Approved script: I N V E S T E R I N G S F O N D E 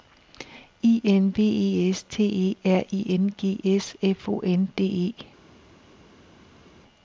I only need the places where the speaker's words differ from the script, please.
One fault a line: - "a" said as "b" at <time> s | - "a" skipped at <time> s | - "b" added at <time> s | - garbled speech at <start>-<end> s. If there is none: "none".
none